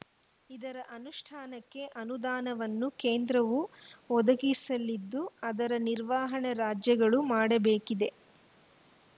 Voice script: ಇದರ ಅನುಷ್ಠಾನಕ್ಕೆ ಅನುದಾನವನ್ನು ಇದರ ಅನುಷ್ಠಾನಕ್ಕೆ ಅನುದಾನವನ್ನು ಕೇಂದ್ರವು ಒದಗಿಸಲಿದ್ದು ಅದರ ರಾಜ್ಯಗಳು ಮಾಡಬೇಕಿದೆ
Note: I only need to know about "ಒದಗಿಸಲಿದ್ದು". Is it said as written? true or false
true